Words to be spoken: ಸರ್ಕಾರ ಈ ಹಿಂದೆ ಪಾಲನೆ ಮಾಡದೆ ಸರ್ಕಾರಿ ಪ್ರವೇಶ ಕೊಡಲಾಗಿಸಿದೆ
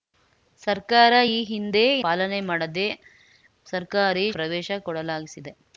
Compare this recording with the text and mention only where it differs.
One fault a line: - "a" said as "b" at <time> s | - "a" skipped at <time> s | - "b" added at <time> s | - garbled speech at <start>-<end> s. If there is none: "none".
none